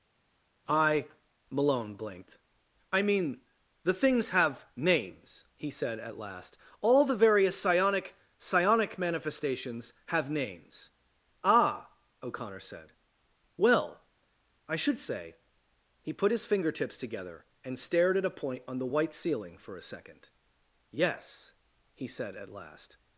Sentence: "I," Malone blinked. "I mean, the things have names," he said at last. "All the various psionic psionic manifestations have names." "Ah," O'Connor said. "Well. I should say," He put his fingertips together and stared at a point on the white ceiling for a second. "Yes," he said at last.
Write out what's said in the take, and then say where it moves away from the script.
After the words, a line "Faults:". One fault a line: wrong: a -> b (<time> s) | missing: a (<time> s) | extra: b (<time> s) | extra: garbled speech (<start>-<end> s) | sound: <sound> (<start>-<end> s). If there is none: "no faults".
"I," Malone blinked. "I mean, the things have names," he said at last. "All the various psionic psionic manifestations have names." "Ah," O'Connor said. "Well. I should say," He put his fingertips together and stared at a point on the white ceiling for a second. "Yes," he said at last.
Faults:
no faults